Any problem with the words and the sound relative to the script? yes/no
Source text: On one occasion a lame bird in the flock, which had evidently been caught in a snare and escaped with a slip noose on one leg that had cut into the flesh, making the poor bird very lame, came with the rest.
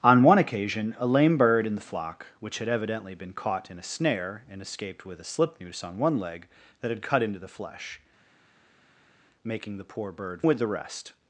yes